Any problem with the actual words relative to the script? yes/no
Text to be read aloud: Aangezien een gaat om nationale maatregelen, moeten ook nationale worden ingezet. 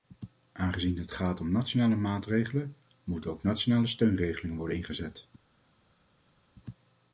yes